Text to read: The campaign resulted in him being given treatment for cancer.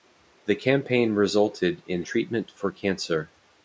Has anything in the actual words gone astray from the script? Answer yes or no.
yes